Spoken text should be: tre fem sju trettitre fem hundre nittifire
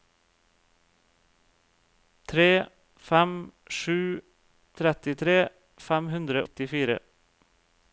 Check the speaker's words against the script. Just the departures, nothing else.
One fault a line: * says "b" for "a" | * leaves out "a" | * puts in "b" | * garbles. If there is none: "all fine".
all fine